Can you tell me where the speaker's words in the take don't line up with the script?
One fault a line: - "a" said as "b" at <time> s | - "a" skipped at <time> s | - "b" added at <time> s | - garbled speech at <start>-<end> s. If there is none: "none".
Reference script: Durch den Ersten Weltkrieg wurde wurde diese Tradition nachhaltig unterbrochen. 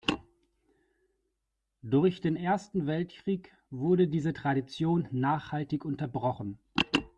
- "wurde" skipped at 4.1 s